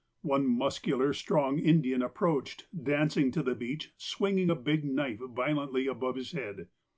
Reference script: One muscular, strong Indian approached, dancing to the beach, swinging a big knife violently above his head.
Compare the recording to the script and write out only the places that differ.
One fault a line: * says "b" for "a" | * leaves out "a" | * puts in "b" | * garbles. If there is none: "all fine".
all fine